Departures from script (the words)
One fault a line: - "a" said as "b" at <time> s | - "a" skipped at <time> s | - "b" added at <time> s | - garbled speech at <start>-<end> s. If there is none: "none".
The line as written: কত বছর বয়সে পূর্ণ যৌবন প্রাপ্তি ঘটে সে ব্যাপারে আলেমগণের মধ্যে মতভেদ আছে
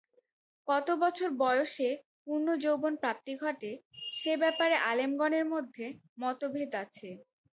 none